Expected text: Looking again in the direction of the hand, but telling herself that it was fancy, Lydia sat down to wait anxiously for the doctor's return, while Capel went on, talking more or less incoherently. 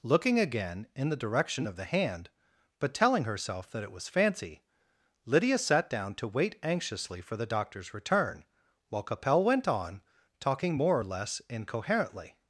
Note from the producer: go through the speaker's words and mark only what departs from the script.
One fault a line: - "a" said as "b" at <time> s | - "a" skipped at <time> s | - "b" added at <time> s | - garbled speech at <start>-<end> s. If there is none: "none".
none